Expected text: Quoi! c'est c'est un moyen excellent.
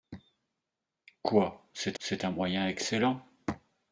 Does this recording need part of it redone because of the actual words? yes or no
no